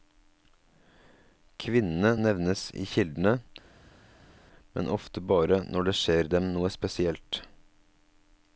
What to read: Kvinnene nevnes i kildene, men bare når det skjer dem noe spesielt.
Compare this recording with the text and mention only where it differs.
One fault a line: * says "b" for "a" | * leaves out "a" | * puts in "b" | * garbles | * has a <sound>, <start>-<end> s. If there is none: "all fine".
* puts in "ofte"